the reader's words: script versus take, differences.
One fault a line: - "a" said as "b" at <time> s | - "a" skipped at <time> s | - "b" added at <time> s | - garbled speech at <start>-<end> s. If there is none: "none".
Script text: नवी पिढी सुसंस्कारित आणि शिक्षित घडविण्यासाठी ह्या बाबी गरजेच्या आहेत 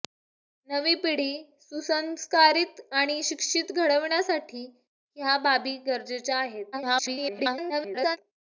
- garbled speech at 6.7-8.2 s